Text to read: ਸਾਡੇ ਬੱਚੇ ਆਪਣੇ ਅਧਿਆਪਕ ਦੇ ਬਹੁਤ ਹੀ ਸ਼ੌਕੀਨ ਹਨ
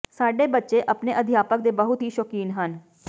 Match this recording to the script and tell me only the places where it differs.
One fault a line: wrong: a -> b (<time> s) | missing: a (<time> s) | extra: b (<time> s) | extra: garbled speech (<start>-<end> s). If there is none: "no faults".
no faults